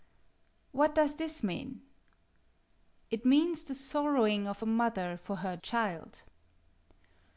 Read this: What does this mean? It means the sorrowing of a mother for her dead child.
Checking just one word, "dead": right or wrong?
wrong